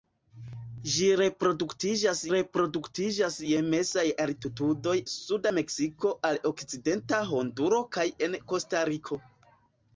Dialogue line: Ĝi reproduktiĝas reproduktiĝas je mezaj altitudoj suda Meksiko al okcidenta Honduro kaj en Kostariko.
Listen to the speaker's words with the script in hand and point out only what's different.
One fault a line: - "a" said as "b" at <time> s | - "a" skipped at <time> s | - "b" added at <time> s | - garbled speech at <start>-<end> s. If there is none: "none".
none